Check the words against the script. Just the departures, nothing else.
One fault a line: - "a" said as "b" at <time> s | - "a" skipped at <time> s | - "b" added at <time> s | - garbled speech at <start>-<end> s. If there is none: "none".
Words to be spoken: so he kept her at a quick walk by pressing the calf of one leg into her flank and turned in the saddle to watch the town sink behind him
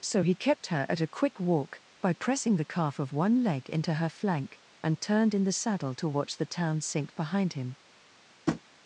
none